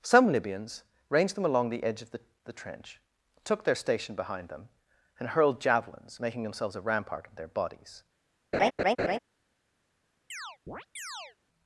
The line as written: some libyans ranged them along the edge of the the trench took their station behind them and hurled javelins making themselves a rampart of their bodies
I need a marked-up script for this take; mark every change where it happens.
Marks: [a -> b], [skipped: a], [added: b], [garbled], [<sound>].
some libyans ranged them along the edge of the the trench took their station behind them and hurled javelins making themselves a rampart of their bodies [laugh] [chirp]